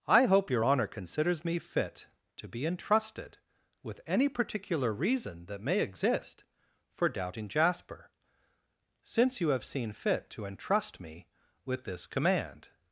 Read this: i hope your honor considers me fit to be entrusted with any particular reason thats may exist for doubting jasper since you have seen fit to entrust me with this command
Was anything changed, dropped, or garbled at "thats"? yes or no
yes